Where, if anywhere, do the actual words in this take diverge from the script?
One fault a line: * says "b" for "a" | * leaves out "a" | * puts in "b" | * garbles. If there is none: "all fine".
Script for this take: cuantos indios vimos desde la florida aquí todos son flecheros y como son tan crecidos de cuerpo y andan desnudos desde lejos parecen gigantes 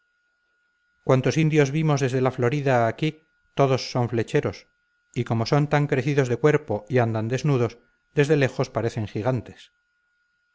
all fine